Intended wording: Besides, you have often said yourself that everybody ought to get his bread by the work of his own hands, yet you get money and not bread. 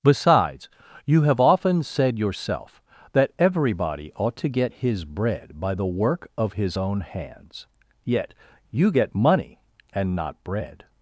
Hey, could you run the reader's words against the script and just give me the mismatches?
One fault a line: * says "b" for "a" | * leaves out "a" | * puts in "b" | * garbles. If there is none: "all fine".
all fine